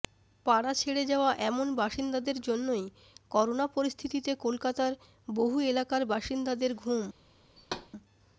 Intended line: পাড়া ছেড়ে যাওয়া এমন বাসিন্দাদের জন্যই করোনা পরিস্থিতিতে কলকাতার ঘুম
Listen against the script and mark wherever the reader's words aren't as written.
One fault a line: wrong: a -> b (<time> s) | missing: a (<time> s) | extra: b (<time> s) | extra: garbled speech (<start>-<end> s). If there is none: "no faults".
extra: বহু এলাকার বাসিন্দাদের (5.3 s)